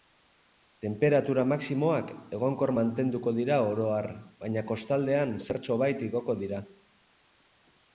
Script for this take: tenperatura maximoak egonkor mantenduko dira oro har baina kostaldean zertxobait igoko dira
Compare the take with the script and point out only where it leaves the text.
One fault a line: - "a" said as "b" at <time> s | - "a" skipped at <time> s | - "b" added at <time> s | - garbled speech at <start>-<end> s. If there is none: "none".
none